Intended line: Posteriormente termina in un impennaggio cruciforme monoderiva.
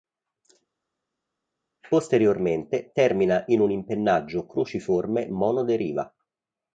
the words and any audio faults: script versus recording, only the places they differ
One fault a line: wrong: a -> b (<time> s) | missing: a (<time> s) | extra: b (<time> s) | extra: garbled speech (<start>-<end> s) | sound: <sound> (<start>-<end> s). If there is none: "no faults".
no faults